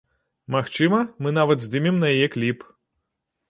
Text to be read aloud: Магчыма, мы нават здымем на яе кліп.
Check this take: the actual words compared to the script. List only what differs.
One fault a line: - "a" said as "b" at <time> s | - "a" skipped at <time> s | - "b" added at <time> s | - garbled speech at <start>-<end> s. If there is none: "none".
none